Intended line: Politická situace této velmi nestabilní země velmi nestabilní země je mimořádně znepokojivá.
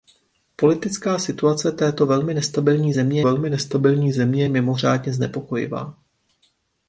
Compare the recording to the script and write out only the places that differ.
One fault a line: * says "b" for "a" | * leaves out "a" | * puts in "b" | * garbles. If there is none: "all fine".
all fine